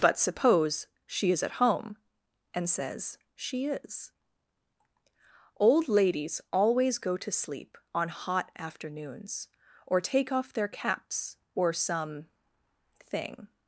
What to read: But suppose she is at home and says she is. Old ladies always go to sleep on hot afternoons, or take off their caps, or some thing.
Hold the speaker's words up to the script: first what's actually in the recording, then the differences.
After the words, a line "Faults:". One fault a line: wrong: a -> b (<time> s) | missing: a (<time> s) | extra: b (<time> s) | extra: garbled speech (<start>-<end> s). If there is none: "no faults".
But suppose she is at home and says she is. Old ladies always go to sleep on hot afternoons, or take off their caps, or some thing.
Faults:
no faults